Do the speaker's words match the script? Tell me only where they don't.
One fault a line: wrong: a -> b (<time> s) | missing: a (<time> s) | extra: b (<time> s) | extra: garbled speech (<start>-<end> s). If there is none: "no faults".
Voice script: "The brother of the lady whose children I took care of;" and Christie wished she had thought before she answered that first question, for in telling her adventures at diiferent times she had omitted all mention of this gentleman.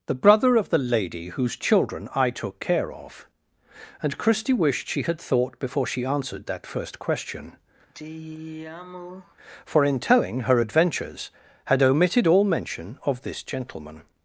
missing: at diiferent times she (11.3 s)